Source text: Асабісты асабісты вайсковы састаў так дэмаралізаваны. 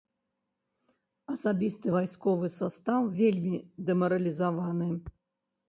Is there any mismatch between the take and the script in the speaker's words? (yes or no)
yes